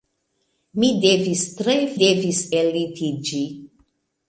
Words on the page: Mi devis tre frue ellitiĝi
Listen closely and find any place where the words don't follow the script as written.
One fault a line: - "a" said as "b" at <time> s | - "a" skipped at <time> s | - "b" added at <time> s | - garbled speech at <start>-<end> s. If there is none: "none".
- "frue" said as "devis" at 2.0 s